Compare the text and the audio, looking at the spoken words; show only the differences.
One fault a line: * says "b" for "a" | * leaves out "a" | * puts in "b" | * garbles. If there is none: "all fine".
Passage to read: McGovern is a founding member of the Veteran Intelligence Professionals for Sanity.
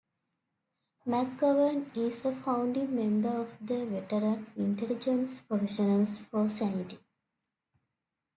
all fine